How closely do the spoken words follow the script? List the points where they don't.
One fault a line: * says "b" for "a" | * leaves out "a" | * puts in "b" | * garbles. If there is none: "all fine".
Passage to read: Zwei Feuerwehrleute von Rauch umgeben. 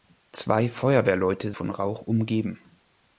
all fine